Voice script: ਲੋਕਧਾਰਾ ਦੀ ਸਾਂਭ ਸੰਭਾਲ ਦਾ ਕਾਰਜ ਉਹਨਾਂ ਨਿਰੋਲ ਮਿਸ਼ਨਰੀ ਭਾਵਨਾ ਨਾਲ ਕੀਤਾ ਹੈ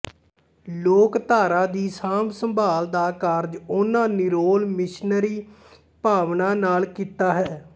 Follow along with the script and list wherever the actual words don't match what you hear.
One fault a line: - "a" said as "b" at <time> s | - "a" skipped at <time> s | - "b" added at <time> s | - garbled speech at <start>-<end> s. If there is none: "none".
none